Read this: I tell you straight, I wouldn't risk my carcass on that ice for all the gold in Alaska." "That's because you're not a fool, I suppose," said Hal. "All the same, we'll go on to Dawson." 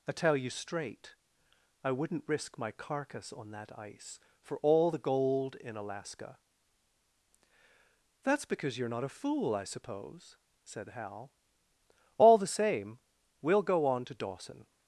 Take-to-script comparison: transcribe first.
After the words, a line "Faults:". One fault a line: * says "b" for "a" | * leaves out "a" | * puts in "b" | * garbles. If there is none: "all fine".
I tell you straight, I wouldn't risk my carcass on that ice for all the gold in Alaska." "That's because you're not a fool, I suppose," said Hal. "All the same, we'll go on to Dawson."
Faults:
all fine